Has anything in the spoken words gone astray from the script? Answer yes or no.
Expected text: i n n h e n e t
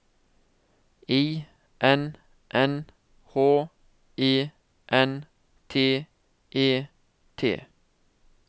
yes